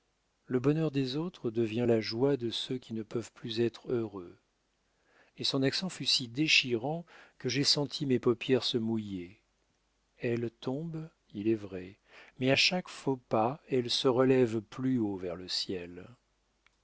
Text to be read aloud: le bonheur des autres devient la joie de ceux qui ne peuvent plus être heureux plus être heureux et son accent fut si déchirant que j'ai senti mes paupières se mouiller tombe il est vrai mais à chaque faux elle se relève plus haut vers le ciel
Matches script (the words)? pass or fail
fail